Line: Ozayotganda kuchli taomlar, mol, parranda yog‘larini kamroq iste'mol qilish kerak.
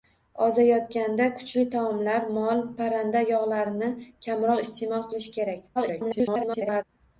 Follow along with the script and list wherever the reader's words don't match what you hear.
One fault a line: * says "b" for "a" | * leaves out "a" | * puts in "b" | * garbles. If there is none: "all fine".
* garbles